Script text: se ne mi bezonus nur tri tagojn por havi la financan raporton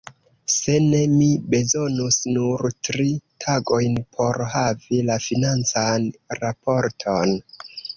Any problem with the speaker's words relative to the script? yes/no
no